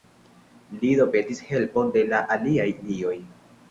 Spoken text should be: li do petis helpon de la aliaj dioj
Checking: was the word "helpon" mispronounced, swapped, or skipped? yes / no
no